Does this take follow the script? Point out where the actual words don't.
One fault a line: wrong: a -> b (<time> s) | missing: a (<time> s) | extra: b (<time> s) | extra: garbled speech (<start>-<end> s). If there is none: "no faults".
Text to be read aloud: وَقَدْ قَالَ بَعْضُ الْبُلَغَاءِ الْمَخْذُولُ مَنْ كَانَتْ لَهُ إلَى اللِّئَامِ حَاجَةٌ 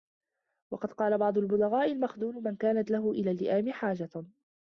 no faults